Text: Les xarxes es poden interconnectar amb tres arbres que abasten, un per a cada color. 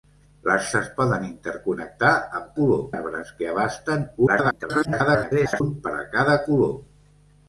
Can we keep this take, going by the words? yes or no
no